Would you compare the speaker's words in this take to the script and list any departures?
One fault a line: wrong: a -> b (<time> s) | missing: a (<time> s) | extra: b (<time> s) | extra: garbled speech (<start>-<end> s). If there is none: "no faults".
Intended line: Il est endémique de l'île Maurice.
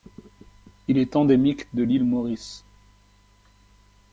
no faults